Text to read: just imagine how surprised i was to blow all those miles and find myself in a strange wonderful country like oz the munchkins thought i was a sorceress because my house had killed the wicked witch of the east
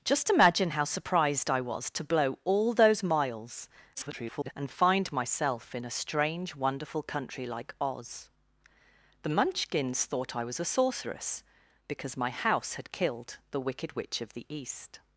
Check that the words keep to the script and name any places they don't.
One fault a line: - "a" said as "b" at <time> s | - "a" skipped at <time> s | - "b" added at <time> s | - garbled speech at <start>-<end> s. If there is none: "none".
- garbled speech at 3.9-4.5 s